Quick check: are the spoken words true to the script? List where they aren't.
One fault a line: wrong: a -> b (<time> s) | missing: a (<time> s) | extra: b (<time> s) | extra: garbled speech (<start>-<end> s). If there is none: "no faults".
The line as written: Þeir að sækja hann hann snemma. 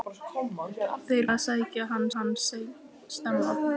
no faults